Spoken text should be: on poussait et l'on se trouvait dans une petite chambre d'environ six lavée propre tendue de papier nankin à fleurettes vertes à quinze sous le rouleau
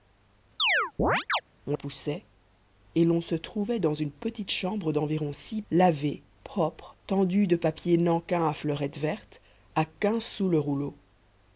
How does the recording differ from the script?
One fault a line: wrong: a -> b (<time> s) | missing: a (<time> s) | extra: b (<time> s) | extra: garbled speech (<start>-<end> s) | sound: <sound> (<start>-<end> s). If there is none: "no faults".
sound: chirp (0.6-1.4 s)